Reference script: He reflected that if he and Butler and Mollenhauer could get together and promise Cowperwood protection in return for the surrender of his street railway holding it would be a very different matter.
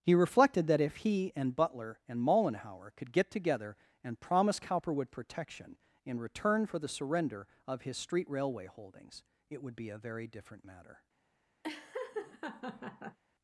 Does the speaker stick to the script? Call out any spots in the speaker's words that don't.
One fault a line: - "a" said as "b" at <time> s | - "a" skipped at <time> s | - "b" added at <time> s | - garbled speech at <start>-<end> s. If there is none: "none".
- "holding" said as "holdings" at 8.7 s